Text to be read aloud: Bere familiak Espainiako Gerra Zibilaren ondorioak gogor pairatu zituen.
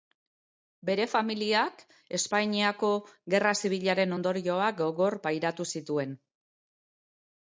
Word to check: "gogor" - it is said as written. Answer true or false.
true